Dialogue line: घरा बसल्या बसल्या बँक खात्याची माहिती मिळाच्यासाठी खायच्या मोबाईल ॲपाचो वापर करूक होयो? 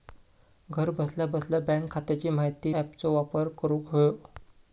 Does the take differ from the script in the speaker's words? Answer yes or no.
yes